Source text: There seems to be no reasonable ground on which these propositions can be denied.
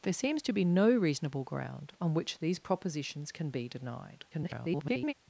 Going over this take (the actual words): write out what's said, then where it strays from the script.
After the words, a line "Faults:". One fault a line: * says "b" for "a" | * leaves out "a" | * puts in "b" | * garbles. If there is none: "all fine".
There seems to be no reasonable ground on which these propositions can be denied. [garbled]
Faults:
* garbles